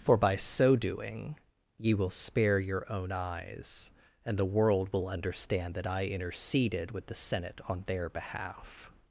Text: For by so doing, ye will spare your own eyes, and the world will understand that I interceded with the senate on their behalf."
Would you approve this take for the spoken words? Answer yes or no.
yes